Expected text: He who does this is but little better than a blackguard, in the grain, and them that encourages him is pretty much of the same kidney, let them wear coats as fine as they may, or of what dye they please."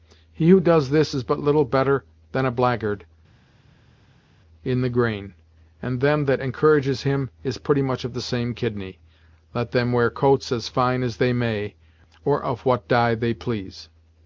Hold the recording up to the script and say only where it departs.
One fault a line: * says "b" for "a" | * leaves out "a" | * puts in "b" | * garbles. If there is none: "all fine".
all fine